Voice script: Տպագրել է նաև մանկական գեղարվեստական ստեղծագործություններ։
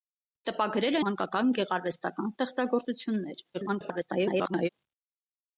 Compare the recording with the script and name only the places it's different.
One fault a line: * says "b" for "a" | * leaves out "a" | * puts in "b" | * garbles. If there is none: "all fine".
* leaves out "նաև"
* garbles